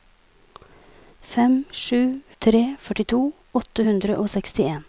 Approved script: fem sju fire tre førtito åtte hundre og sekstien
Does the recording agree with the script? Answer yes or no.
no